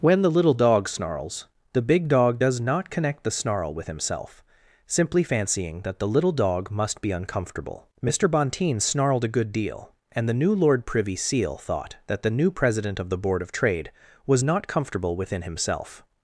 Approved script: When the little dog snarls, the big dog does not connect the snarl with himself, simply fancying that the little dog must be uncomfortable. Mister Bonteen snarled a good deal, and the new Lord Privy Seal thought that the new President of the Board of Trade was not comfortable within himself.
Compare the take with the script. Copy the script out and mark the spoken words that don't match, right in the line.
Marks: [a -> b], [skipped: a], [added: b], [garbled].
When the little dog snarls, the big dog does not connect the snarl with himself, simply fancying that the little dog must be uncomfortable. Mister Bonteen snarled a good deal, and the new Lord Privy Seal thought that the new President of the Board of Trade was not comfortable within himself.